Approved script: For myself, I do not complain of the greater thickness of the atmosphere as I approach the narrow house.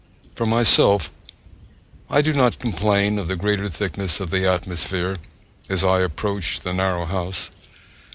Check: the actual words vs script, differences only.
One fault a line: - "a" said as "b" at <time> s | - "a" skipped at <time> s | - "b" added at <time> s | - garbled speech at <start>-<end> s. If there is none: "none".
none